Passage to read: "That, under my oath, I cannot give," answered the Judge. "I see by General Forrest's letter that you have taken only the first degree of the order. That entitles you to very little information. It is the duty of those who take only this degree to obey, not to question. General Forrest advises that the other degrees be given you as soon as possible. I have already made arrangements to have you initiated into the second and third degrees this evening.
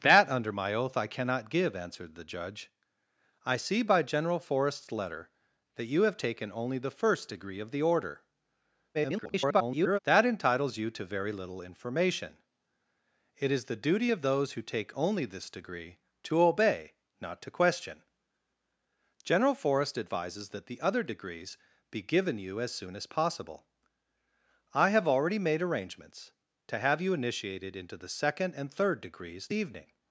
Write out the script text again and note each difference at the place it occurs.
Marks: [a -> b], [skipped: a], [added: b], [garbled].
"That, under my oath, I cannot give," answered the Judge. "I see by General Forrest's letter that you have taken only the first degree of the order. [garbled] That entitles you to very little information. It is the duty of those who take only this degree to obey, not to question. General Forrest advises that the other degrees be given you as soon as possible. I have already made arrangements to have you initiated into the second and third degrees [skipped: this] evening.